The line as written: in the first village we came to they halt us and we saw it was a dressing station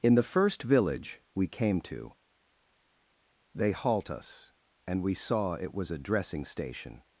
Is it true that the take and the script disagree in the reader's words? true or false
false